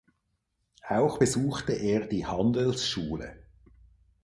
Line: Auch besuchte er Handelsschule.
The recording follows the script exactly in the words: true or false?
false